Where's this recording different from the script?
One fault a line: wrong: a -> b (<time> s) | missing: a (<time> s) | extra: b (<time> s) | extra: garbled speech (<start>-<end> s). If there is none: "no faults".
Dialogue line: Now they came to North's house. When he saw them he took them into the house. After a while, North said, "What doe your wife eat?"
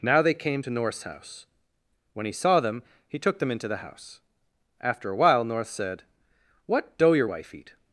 no faults